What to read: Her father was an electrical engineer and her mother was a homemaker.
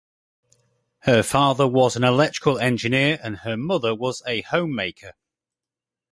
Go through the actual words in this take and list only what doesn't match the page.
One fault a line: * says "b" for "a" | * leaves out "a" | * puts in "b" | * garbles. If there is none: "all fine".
all fine